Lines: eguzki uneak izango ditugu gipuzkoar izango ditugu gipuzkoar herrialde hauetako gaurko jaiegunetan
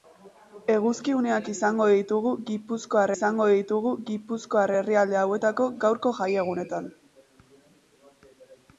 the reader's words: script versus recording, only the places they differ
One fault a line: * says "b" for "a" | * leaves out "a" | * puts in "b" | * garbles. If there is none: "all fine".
all fine